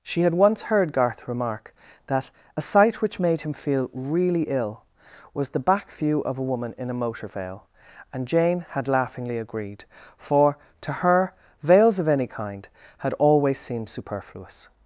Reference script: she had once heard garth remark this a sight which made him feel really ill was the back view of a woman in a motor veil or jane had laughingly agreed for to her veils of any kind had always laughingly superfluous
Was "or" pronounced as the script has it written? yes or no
no